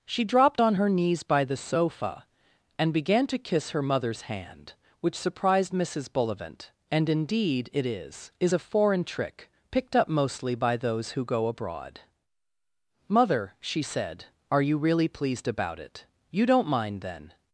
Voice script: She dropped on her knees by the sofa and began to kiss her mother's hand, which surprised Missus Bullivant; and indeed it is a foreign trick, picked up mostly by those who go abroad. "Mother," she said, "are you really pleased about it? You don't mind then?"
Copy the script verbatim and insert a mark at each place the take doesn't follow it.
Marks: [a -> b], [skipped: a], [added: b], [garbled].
She dropped on her knees by the sofa and began to kiss her mother's hand, which surprised Missus Bullivant; and indeed it is [added: is] a foreign trick, picked up mostly by those who go abroad. "Mother," she said, "are you really pleased about it? You don't mind then?"